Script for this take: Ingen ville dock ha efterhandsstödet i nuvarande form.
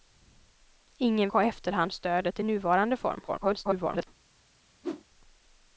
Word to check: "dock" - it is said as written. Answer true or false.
false